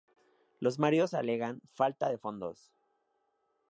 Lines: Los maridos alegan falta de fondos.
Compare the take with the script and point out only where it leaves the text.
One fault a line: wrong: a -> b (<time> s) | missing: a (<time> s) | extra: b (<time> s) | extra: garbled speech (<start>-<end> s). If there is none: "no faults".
no faults